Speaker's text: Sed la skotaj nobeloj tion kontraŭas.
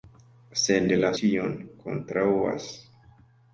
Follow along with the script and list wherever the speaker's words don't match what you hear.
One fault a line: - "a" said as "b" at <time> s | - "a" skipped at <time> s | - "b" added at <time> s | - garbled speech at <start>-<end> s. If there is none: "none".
- "skotaj nobeloj" skipped at 1.1 s